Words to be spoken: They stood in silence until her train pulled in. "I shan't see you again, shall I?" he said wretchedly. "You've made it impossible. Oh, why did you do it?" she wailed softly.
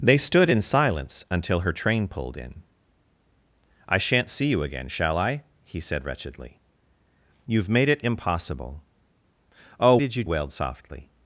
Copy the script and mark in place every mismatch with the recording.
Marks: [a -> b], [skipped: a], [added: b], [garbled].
They stood in silence until her train pulled in. "I shan't see you again, shall I?" he said wretchedly. "You've made it impossible. Oh, [skipped: why] did you [skipped: do it?" she] wailed softly.